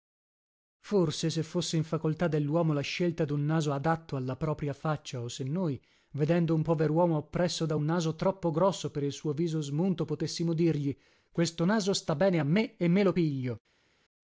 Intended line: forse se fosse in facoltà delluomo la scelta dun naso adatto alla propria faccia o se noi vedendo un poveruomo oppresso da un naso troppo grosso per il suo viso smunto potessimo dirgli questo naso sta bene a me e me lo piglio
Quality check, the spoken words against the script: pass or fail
pass